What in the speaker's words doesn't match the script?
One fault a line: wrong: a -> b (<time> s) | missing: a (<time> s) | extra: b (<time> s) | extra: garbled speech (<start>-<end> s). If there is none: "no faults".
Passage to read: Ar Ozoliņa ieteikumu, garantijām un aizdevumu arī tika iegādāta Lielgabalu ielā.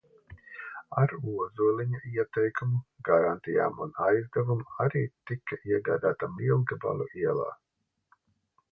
no faults